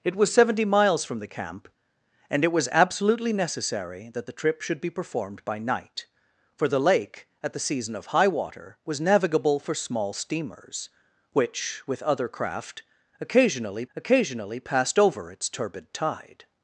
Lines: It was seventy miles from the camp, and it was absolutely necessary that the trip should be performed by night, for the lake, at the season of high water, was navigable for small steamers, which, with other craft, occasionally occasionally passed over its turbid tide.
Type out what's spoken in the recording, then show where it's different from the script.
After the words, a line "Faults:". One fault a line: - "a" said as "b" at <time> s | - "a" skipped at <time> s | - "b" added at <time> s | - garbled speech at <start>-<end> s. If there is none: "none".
It was seventy miles from the camp, and it was absolutely necessary that the trip should be performed by night, for the lake, at the season of high water, was navigable for small steamers, which, with other craft, occasionally occasionally passed over its turbid tide.
Faults:
none